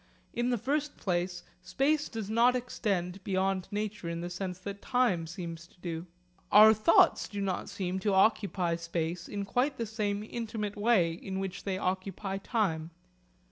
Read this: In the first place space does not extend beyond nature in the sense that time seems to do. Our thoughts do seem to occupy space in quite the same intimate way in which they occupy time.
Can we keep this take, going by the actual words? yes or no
no